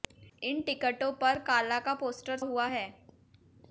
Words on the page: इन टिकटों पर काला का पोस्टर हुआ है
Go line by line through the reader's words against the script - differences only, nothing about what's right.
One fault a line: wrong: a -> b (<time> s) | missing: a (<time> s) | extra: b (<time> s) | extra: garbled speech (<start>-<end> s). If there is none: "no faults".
no faults